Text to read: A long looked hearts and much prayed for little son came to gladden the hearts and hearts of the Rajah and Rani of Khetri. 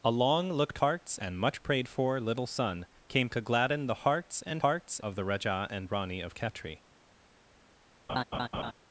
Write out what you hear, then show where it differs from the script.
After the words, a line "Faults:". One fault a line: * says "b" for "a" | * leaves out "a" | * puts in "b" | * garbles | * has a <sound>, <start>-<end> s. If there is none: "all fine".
A long looked hearts and much prayed for little son came to gladden the hearts and hearts of the Rajah and Rani of Khetri.
Faults:
* has a laugh, 8.1-8.7 s